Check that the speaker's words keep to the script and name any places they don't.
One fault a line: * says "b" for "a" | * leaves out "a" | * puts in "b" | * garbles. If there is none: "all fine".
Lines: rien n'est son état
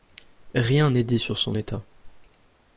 * puts in "dit sur"